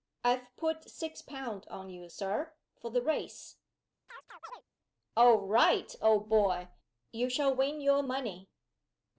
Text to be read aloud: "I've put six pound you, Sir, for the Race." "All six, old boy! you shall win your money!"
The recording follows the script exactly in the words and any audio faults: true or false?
false